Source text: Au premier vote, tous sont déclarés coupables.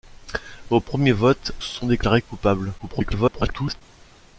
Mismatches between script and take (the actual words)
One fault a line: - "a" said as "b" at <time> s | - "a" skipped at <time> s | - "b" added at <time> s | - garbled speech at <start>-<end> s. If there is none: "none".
- "tous" skipped at 1.5 s
- garbled speech at 2.8-3.8 s